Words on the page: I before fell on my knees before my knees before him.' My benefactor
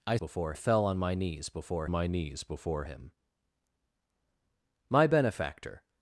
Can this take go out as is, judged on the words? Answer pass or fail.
pass